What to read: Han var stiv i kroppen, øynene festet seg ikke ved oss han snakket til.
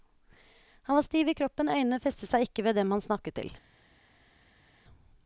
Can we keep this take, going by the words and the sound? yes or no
no